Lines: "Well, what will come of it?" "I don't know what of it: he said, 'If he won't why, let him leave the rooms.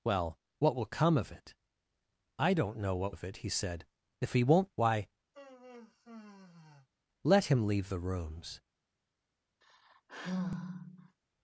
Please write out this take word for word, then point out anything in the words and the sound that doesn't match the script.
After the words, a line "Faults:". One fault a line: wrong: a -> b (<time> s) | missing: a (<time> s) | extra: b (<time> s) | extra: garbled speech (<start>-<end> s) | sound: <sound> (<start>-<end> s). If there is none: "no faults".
"Well, what will come of it?" "I don't know what of it: he said, 'If he won't why, let him leave the rooms.
Faults:
sound: sigh (5.3-6.9 s)
sound: sigh (9.6-11.2 s)